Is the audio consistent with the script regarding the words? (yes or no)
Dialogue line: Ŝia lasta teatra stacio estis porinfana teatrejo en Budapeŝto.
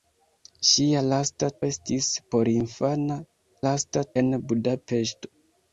no